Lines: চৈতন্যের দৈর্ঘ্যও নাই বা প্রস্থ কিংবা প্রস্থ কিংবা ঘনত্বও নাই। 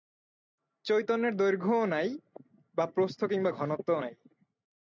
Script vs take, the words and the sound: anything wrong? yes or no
yes